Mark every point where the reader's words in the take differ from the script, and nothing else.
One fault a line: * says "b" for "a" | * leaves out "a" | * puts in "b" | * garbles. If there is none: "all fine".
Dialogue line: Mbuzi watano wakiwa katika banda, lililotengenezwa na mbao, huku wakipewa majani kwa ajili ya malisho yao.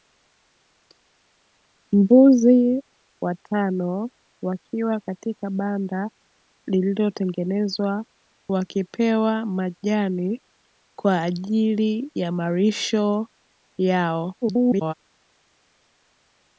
* leaves out "na mbao huku"
* garbles